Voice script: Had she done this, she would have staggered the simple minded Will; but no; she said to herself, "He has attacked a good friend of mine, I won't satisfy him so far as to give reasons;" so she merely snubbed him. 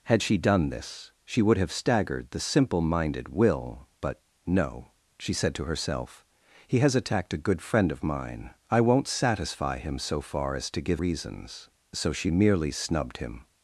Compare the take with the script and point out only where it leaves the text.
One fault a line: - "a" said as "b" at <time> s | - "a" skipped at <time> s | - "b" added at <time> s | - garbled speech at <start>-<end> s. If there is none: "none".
none